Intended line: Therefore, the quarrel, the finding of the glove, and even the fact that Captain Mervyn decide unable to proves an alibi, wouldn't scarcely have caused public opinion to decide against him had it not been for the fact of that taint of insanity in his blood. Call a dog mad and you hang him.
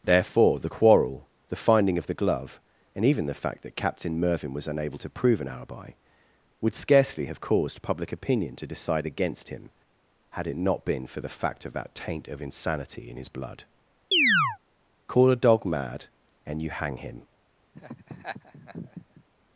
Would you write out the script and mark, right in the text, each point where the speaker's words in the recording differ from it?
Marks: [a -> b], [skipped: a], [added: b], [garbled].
Therefore, the quarrel, the finding of the glove, and even the fact that Captain Mervyn [decide -> was] unable to [proves -> prove] an alibi, [wouldn't -> would] scarcely have caused public opinion to decide against him had it not been for the fact of that taint of insanity in his blood. Call a dog mad and you hang him.